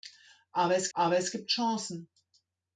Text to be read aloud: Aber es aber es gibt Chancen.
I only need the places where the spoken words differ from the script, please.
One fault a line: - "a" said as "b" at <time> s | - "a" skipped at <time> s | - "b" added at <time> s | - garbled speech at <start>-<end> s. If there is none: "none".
none